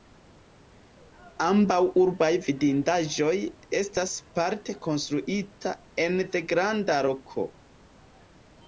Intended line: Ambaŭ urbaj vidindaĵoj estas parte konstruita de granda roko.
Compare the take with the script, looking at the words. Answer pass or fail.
fail